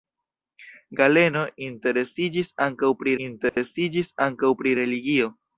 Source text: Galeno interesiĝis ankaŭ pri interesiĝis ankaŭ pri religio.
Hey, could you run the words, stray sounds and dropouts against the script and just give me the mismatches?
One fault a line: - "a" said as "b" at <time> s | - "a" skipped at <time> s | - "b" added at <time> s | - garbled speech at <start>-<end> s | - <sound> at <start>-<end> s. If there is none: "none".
- dropout at 3.5-3.6 s